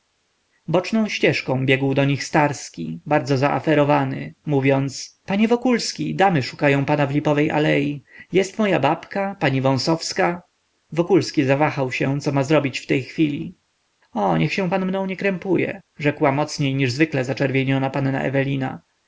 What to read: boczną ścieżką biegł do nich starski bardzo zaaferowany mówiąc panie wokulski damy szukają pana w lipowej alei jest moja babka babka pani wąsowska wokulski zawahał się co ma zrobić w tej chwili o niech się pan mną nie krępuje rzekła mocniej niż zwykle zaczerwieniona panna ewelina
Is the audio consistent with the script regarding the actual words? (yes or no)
no